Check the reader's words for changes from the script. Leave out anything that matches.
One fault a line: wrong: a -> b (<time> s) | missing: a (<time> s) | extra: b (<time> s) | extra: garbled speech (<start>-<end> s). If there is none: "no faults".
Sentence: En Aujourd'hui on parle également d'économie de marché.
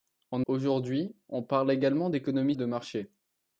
no faults